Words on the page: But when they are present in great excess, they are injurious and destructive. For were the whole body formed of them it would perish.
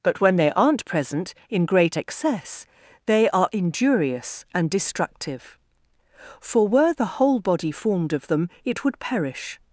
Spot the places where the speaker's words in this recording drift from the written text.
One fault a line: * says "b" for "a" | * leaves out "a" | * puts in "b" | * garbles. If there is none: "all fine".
* says "aren't" for "are"